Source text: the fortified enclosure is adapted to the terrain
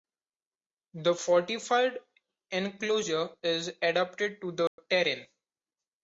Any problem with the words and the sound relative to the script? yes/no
yes